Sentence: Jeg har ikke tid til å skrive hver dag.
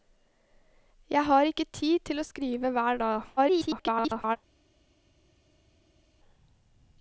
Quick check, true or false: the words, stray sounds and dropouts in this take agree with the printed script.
false